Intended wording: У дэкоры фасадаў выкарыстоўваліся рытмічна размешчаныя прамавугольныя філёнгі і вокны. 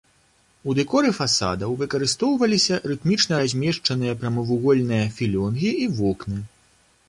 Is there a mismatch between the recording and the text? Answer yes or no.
no